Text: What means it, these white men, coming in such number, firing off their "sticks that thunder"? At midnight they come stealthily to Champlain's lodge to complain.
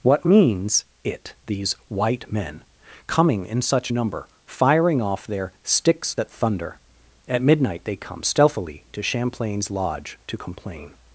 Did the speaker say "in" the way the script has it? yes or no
yes